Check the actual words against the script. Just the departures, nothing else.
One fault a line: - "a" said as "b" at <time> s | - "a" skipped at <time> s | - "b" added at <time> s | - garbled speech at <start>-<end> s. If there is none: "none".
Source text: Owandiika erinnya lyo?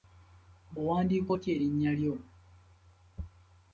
- "otya" added at 1.3 s